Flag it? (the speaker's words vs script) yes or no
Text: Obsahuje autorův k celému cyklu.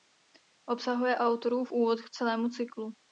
yes